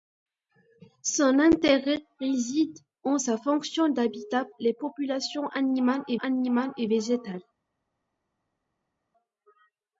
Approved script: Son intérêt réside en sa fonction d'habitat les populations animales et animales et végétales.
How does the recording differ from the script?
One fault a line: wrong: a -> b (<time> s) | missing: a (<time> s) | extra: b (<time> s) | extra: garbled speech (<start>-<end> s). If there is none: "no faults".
no faults